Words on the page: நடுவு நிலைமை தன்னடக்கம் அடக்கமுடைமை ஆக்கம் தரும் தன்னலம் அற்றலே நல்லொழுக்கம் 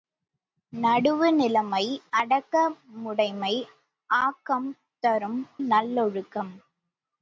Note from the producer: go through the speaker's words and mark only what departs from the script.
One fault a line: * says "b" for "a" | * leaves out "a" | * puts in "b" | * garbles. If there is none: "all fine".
* leaves out "தன்னடக்கம்"
* leaves out "தன்னலம் அற்றலே"